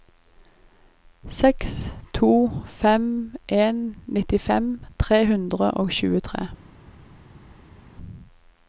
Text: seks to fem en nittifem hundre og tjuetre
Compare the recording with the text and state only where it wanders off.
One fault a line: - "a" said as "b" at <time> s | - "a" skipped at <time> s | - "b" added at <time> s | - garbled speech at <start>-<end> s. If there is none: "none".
- "tre" added at 5.0 s